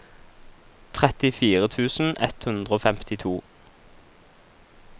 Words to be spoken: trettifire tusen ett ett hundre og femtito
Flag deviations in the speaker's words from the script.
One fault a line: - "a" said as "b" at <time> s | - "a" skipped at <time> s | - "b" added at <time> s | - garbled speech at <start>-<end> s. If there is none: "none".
- "ett" skipped at 2.5 s